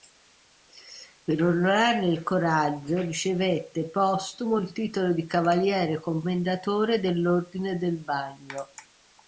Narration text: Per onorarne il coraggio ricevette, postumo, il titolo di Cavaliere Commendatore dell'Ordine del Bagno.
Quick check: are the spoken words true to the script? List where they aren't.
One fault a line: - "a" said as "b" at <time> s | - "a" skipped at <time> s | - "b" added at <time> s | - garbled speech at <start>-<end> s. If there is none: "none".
none